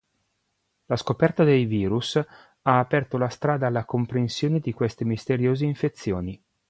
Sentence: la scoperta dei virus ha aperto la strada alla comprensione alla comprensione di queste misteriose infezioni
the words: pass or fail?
fail